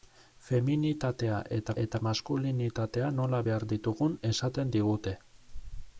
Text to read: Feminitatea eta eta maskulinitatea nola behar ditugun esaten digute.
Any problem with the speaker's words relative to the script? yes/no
no